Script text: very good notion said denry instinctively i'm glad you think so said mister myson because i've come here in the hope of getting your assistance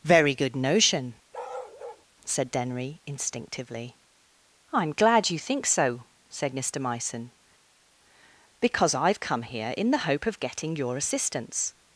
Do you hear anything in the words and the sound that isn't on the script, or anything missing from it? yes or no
yes